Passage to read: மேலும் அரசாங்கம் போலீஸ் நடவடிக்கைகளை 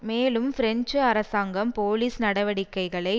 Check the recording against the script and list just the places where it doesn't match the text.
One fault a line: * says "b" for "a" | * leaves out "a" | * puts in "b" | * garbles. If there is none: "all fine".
* puts in "பிரெஞ்சு"